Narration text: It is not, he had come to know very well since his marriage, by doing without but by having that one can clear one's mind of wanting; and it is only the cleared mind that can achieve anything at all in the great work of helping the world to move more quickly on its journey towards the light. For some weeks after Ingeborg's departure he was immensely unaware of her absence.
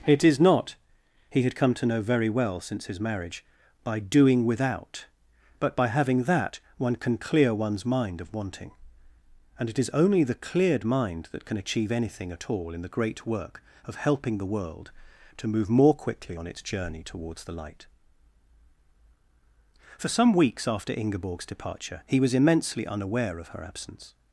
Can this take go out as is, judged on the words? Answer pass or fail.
pass